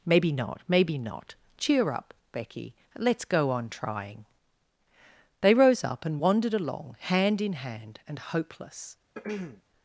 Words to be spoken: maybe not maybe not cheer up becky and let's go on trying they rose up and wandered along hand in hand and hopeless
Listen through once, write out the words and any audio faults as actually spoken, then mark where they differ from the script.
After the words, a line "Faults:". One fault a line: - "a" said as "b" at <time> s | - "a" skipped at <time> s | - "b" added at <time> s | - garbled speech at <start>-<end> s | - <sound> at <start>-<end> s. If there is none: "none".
maybe not maybe not cheer up becky let's go on trying they rose up and wandered along hand in hand and hopeless
Faults:
- "and" skipped at 2.7 s
- throat clearing at 9.1-9.6 s